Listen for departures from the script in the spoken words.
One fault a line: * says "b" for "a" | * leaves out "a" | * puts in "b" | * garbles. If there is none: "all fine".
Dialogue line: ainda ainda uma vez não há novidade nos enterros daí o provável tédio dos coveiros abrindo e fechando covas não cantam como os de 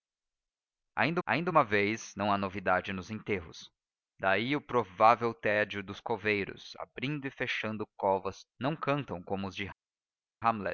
all fine